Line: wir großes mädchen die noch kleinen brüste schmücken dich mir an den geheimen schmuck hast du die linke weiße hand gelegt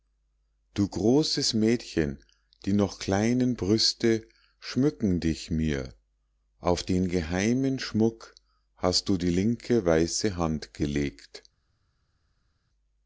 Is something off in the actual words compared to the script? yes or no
yes